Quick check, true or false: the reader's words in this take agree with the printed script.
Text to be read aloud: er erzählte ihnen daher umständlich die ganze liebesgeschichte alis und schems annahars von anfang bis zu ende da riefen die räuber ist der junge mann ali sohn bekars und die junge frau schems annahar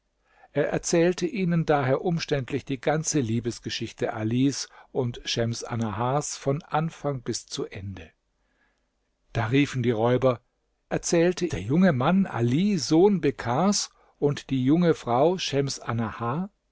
false